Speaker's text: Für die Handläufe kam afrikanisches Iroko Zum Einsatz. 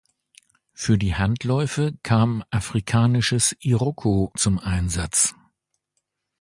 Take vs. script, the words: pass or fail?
pass